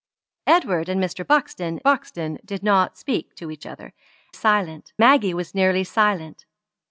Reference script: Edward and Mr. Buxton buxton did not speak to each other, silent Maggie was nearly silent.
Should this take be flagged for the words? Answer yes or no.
no